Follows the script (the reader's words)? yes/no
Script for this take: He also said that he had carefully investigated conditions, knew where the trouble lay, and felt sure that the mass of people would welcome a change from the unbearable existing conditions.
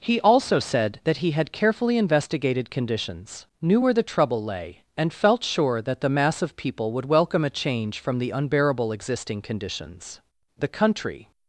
no